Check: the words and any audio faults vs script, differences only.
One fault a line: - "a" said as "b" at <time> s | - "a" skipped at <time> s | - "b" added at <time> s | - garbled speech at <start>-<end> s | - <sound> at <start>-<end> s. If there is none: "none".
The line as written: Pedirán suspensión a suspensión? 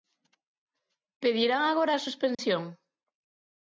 - "suspensión" said as "agora" at 1.6 s
- dropout at 2.3-2.4 s